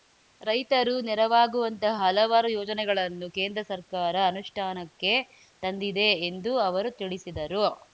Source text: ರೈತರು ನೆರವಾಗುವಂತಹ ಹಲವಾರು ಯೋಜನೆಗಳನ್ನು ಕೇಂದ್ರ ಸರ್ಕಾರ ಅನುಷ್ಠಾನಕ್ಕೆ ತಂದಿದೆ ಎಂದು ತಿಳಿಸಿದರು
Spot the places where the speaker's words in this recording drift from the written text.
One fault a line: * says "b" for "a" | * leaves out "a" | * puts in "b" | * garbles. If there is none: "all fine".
* puts in "ಅವರು"